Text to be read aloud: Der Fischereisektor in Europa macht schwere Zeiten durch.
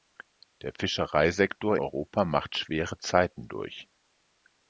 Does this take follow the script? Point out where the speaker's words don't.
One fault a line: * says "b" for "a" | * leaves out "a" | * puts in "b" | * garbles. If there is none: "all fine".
* leaves out "in"